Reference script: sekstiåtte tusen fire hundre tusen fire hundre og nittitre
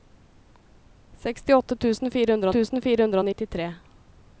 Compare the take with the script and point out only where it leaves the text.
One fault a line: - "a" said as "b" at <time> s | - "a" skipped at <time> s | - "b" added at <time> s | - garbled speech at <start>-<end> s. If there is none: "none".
none